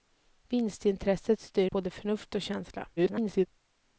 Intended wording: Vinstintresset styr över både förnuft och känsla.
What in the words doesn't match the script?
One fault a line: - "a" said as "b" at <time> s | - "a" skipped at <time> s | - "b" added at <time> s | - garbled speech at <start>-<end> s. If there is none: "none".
- "över" skipped at 1.7 s
- garbled speech at 3.0-3.5 s